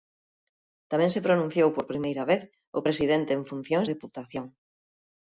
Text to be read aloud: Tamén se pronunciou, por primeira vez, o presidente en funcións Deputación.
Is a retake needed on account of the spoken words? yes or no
no